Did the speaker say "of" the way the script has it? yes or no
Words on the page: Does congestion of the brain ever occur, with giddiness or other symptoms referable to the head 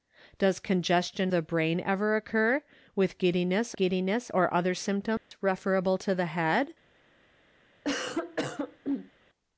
no